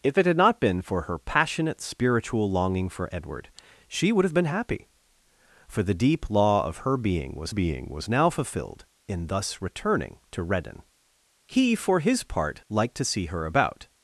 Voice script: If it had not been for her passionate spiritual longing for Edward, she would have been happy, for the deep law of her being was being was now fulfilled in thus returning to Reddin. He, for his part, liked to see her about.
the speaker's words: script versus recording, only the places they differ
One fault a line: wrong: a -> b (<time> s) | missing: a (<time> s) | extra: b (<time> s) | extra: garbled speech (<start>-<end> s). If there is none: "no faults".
no faults